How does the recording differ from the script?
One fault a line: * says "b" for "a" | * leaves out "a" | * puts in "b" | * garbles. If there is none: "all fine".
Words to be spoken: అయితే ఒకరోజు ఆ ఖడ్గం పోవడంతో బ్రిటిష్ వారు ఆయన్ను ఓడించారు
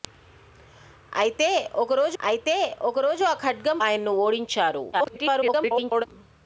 * puts in "అయితే ఒకరోజు"
* leaves out "పోవడంతో బ్రిటిష్ వారు"
* garbles